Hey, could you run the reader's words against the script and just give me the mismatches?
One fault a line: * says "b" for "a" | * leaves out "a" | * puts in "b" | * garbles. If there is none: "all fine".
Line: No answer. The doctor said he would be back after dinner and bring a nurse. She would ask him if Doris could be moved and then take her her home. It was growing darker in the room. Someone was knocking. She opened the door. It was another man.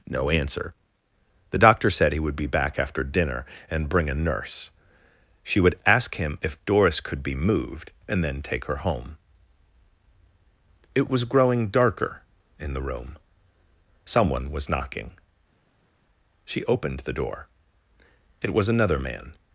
* leaves out "her"